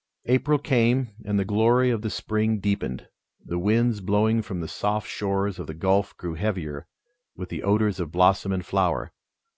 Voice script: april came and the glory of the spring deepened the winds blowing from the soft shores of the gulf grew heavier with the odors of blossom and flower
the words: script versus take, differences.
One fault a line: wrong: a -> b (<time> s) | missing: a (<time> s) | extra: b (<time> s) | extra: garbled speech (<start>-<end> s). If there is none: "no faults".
no faults